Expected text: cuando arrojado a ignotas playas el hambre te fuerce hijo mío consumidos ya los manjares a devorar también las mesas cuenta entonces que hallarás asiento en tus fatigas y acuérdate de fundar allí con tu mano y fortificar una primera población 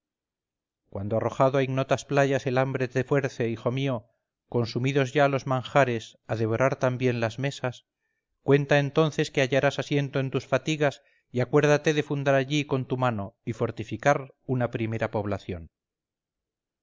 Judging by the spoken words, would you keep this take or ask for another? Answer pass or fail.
pass